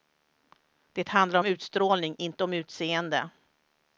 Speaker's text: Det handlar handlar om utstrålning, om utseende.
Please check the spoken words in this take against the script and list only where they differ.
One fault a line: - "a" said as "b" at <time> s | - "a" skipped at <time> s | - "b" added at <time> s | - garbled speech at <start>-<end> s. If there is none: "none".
- "handlar" skipped at 1.4 s
- "inte" added at 2.2 s